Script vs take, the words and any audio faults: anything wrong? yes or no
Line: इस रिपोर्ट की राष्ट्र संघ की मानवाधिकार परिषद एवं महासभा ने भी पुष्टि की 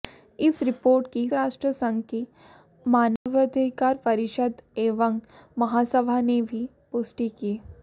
yes